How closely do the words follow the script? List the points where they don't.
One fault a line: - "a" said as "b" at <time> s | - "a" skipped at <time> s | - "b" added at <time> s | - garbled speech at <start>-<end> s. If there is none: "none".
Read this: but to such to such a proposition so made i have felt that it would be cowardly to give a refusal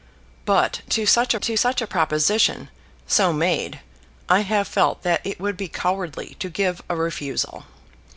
none